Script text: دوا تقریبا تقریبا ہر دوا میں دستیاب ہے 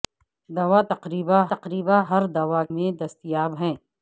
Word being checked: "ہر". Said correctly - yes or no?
yes